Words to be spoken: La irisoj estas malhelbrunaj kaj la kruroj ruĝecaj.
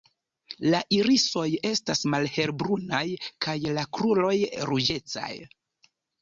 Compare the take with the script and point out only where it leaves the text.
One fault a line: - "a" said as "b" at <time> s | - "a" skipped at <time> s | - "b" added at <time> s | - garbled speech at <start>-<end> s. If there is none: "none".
none